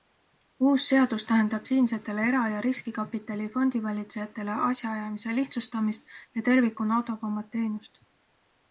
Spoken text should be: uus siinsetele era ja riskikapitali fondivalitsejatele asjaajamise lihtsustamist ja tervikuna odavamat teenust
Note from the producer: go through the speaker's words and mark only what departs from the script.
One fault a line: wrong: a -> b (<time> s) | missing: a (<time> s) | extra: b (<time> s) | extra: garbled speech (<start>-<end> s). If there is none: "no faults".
extra: seadus tähendab (0.9 s)